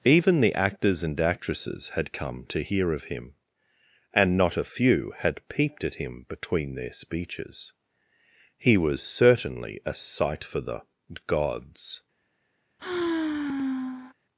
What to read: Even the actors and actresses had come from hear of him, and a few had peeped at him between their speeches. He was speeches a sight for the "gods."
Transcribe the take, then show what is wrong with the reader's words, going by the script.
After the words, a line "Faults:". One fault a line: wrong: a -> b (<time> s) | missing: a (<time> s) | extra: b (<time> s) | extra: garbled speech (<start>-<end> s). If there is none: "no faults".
Even the actors and actresses had come to hear of him, and not a few had peeped at him between their speeches. He was certainly a sight for the "gods."
Faults:
wrong: from -> to (2.5 s)
extra: not (4.4 s)
wrong: speeches -> certainly (9.0 s)